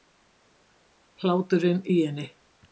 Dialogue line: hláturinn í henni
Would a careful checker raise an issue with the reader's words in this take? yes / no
no